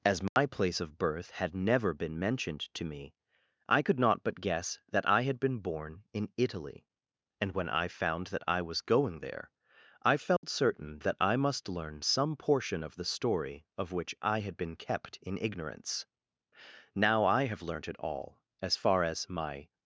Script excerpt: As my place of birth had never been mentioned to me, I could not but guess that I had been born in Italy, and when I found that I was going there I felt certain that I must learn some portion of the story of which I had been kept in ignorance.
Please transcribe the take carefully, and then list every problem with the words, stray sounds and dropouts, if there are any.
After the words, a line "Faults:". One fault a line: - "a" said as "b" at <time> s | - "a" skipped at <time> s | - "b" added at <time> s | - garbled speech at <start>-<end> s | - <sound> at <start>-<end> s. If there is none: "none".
As my place of birth had never been mentioned to me, I could not but guess that I had been born in Italy, and when I found that I was going there I felt certain that I must learn some portion of the story of which I had been kept in ignorance. Now I have learnt it all as far as my
Faults:
- dropout at 0.3-0.4 s
- dropout at 10.4-10.4 s
- "Now I have learnt it all as far as my" added at 16.9 s